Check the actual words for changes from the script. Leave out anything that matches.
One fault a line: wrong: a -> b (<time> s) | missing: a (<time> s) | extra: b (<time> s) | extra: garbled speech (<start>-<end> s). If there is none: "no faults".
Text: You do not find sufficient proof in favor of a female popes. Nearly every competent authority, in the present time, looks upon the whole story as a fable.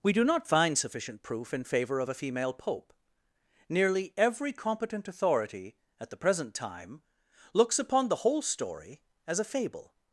wrong: You -> We (0.0 s)
wrong: popes -> pope (2.5 s)
wrong: in -> at (6.0 s)